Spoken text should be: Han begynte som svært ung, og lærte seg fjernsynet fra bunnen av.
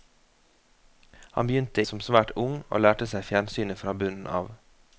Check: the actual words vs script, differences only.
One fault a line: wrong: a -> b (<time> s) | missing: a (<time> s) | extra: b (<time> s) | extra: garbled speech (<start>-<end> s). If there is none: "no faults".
no faults